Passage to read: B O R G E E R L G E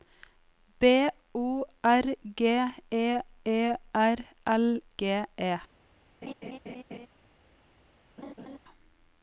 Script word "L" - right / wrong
right